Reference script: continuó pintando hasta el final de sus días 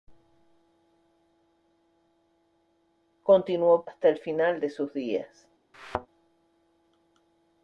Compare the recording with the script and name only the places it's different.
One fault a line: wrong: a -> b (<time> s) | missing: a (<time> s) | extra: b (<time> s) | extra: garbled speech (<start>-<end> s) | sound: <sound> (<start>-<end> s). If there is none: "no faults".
missing: pintando (3.8 s)
sound: thud (5.7-6.1 s)